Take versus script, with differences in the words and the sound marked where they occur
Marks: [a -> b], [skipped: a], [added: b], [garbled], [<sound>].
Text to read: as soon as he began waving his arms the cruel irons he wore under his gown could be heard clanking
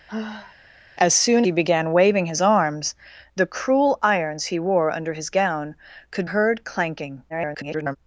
[sigh] as soon [skipped: as] he began waving his arms the cruel irons he wore under his gown could [skipped: be] heard clanking [garbled]